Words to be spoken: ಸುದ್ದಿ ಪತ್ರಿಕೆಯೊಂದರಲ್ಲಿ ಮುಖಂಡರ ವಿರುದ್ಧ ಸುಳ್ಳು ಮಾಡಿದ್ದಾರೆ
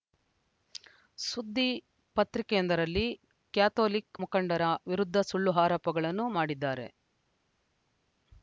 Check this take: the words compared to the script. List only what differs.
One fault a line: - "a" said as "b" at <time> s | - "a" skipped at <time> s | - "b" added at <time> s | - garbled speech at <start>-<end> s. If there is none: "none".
- "ಕ್ಯಾಥೋಲಿಕ್" added at 3.5 s
- "ಆರೋಪಗಳನ್ನು" added at 5.6 s